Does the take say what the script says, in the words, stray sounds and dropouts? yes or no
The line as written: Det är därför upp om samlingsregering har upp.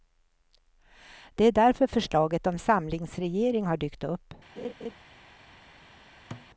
no